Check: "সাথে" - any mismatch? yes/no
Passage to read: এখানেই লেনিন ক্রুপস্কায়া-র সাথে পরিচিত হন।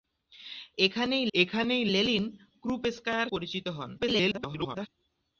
yes